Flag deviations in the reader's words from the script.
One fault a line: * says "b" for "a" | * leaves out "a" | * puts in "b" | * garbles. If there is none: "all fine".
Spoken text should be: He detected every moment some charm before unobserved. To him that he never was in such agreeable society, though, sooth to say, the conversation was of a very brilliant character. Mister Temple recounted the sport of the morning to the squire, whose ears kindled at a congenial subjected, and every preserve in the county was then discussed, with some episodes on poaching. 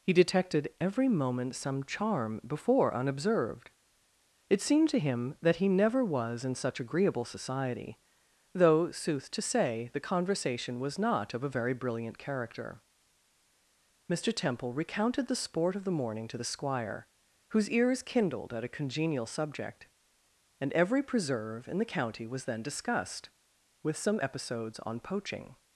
* puts in "It seemed"
* puts in "not"
* says "subject" for "subjected"